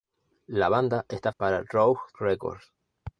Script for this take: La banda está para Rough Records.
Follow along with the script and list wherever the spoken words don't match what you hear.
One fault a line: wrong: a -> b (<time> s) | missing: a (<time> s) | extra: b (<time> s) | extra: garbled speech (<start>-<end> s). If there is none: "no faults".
no faults